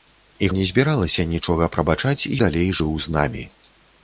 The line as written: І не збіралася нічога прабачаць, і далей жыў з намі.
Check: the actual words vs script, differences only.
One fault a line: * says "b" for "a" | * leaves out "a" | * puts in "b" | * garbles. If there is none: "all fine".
all fine